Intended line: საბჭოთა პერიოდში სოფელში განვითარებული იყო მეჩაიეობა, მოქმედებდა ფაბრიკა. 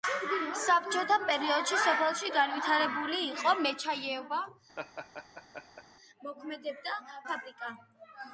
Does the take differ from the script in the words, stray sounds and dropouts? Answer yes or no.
yes